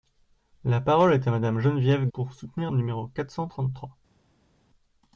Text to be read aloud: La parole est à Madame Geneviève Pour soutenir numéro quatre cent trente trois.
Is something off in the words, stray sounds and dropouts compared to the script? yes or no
no